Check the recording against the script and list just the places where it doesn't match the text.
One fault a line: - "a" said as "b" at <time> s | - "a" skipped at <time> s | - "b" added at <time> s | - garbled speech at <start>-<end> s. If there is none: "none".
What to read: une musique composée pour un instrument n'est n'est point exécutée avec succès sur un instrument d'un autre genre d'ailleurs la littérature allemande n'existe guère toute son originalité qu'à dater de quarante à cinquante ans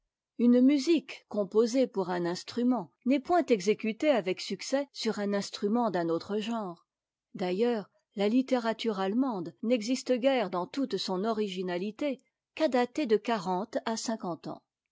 - "n'est" skipped at 3.2 s
- "dans" added at 10.5 s